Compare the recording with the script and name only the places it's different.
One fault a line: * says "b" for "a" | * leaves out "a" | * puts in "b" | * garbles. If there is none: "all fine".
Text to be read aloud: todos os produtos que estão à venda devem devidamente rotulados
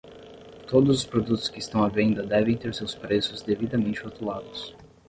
* puts in "ter seus preços"